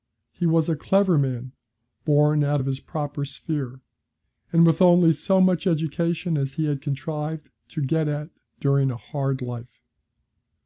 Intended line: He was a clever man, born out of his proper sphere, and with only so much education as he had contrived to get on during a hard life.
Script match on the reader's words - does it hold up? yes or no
no